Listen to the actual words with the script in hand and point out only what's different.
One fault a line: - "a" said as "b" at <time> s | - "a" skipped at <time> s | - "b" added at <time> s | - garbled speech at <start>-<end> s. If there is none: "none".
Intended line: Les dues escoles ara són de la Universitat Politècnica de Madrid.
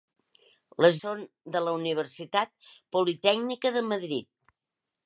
- "dues escoles ara" skipped at 0.9 s